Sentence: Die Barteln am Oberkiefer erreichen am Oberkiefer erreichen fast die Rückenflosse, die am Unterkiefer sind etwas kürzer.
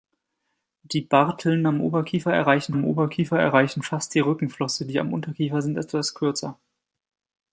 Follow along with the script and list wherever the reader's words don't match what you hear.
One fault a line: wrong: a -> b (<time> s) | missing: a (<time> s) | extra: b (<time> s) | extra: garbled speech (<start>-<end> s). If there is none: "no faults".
no faults